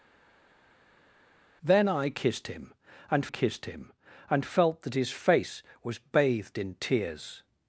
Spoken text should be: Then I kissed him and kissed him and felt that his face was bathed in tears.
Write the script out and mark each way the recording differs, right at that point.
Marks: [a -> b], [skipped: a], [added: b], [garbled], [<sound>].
Then I kissed him and kissed him and felt that his face was bathed in tears.